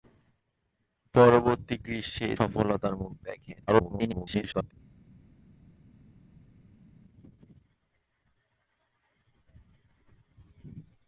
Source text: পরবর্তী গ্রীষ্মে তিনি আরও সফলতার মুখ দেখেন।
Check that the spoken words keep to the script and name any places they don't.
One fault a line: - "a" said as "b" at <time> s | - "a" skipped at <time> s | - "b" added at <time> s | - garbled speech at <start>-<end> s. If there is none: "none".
- "তিনি আরও" skipped at 2.3 s
- garbled speech at 3.7-4.7 s